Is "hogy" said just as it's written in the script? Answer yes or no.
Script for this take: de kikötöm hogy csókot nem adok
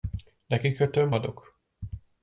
no